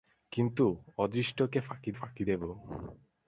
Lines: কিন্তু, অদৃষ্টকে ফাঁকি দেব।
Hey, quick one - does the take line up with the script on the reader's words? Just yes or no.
no